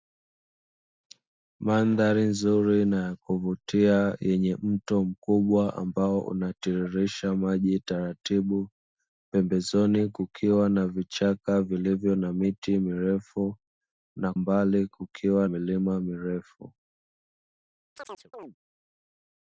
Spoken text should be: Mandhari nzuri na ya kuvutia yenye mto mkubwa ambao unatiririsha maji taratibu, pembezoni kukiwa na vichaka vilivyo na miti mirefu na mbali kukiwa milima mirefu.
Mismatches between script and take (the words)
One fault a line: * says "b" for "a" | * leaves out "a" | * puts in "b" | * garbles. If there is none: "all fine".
all fine